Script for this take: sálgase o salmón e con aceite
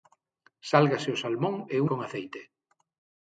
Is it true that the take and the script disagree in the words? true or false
false